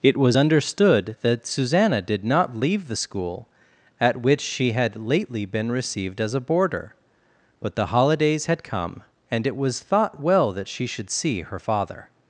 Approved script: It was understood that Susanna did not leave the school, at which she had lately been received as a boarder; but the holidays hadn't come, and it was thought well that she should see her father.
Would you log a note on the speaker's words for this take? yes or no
yes